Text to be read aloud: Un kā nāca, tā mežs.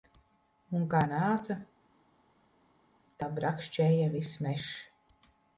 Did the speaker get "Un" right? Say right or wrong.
right